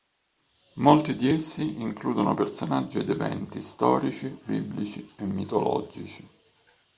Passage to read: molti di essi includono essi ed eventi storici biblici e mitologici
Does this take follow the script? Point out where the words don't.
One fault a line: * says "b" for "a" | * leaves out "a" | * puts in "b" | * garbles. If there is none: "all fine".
* says "personaggi" for "essi"